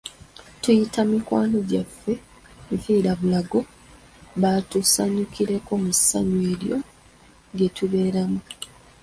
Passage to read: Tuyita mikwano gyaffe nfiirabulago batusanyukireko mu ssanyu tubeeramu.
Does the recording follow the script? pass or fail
fail